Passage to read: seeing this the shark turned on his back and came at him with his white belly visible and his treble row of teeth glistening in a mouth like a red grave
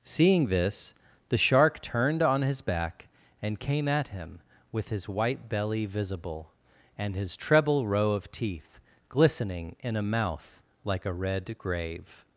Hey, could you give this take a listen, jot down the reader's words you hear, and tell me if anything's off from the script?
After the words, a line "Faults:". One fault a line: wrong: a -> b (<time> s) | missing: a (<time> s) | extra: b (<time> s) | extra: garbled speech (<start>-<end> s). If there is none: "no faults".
seeing this the shark turned on his back and came at him with his white belly visible and his treble row of teeth glistening in a mouth like a red grave
Faults:
no faults